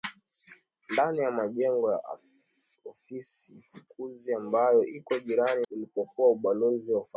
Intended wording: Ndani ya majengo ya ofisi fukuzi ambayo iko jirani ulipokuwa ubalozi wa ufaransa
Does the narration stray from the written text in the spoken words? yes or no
no